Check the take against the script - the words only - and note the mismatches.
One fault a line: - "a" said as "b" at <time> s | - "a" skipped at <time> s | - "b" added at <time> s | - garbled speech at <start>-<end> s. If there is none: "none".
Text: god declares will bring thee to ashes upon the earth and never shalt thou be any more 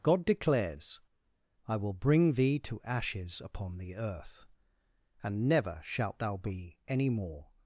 - "i" added at 1.7 s